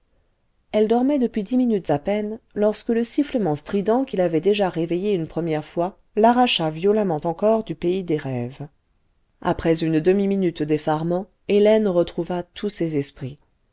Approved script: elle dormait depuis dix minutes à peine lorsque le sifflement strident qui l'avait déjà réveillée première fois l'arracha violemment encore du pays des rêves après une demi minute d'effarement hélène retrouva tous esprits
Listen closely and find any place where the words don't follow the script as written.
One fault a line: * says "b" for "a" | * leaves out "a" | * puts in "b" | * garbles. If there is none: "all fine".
* puts in "une"
* puts in "ses"